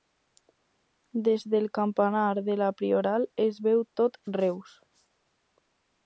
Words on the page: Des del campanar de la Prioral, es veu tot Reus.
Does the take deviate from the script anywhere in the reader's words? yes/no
no